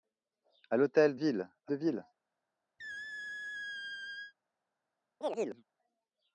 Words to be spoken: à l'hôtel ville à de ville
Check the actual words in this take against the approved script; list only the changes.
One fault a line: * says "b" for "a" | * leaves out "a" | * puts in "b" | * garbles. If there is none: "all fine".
all fine